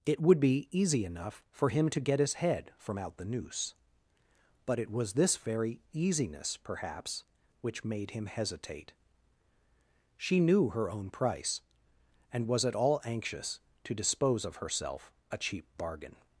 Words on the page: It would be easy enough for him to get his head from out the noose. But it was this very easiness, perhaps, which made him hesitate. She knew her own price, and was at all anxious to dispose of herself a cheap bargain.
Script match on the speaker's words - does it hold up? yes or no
yes